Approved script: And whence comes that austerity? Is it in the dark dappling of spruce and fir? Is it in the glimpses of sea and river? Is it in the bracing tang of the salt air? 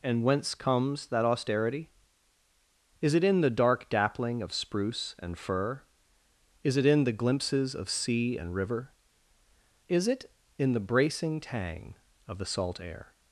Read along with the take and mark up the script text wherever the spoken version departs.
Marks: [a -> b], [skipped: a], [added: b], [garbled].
And whence comes that austerity? Is it in the dark dappling of spruce and fir? Is it in the glimpses of sea and river? Is it in the bracing tang of the salt air?